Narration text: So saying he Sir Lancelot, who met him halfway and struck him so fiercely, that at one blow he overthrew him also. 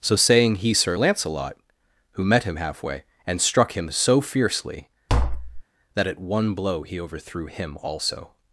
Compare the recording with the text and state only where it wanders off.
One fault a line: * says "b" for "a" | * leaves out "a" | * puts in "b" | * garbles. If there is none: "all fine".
all fine